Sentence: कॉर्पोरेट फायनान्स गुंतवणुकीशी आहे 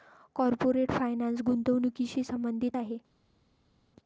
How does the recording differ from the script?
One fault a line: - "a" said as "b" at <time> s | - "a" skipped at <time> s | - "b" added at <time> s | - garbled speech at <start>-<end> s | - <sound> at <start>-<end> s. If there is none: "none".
- "संबंधित" added at 2.2 s